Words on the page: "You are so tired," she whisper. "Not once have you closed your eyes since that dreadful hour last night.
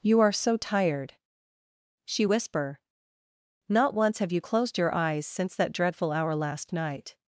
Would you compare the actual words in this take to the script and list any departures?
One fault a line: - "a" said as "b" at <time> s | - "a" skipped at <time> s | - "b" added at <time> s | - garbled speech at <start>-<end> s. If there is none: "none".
none